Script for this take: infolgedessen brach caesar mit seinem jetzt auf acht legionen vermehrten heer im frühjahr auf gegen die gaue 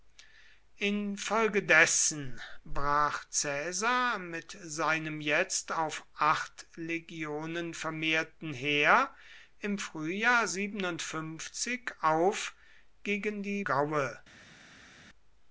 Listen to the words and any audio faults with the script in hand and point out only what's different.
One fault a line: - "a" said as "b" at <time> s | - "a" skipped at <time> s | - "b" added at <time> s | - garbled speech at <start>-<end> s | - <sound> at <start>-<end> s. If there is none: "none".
none